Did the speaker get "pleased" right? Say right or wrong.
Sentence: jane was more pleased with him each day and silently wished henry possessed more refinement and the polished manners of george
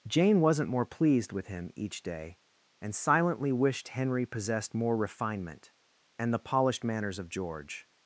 right